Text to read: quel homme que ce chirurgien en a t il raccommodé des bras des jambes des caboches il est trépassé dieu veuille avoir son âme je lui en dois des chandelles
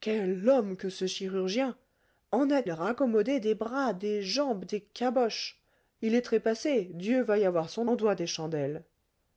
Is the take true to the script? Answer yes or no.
no